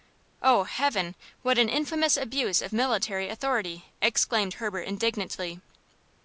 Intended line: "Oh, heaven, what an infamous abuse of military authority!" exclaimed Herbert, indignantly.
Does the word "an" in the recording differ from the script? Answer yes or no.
no